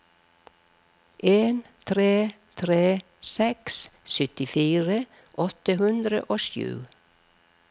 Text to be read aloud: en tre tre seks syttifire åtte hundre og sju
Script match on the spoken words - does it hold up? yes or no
yes